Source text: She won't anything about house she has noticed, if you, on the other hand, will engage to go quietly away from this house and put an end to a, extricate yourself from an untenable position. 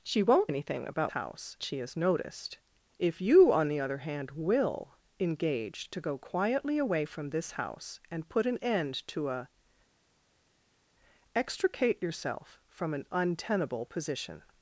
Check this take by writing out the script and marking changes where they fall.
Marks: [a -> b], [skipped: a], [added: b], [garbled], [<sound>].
She won't anything about house she has noticed, if you, on the other hand, will engage to go quietly away from this house and put an end to a, extricate yourself from an untenable position.